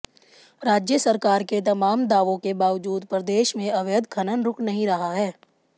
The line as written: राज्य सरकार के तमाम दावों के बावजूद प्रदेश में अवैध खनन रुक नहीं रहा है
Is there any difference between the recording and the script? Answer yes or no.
no